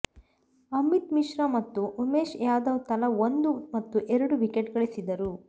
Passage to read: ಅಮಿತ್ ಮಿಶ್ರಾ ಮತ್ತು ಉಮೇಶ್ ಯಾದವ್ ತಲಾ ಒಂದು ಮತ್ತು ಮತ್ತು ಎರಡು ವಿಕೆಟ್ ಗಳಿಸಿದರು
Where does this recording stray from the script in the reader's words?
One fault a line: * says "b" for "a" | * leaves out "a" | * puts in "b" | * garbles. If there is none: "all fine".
* leaves out "ಮತ್ತು"